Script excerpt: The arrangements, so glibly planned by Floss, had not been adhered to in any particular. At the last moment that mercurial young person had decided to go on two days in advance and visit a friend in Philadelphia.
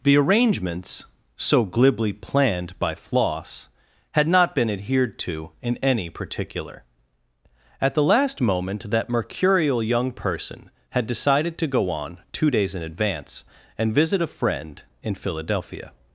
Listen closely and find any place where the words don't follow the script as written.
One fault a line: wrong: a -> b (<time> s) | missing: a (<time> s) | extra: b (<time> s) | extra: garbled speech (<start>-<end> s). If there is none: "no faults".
no faults